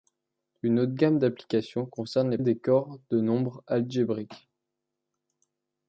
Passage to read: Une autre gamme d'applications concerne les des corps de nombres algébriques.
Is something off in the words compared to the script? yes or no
no